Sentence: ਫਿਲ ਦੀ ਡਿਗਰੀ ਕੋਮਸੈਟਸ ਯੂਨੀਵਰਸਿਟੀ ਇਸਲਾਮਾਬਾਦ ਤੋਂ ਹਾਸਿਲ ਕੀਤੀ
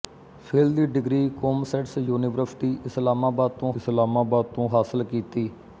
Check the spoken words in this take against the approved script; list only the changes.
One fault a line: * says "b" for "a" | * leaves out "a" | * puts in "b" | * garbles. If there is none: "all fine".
* puts in "ਇਸਲਾਮਾਬਾਦ ਤੋਂ"